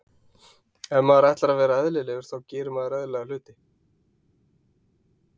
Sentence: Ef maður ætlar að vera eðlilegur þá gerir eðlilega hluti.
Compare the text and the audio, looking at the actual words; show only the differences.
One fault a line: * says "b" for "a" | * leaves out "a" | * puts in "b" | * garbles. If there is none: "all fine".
* puts in "maður"